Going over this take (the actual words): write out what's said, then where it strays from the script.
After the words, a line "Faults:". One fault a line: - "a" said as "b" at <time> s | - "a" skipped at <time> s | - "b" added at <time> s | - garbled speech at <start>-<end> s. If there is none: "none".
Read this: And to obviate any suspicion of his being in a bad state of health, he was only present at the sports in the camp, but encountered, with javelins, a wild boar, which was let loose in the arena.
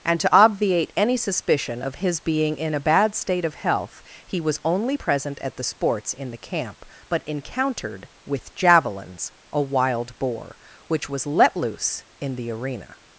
And to obviate any suspicion of his being in a bad state of health, he was only present at the sports in the camp, but encountered, with javelins, a wild boar, which was let loose in the arena.
Faults:
none